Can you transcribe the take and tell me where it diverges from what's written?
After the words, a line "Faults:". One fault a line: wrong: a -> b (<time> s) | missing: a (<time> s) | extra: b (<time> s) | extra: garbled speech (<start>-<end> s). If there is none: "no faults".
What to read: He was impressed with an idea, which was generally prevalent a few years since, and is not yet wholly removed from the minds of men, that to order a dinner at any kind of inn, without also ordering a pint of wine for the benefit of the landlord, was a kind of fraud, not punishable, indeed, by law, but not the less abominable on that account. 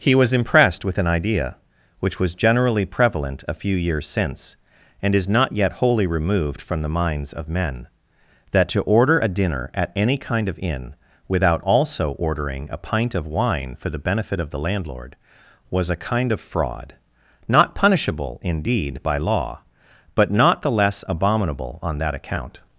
He was impressed with an idea, which was generally prevalent a few years since, and is not yet wholly removed from the minds of men, that to order a dinner at any kind of inn, without also ordering a pint of wine for the benefit of the landlord, was a kind of fraud, not punishable, indeed, by law, but not the less abominable on that account.
Faults:
no faults